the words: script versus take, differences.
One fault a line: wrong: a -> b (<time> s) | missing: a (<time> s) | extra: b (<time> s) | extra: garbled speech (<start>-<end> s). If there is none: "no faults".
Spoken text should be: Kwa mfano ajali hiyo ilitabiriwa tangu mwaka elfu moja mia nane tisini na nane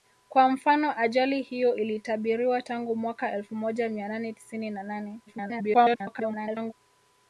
extra: garbled speech (5.3-6.7 s)